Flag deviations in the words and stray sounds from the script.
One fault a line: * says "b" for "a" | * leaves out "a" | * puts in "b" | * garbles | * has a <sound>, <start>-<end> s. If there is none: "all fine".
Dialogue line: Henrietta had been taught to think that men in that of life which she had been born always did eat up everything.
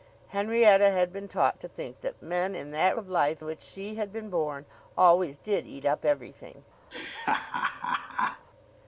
* has a laugh, 6.9-8.5 s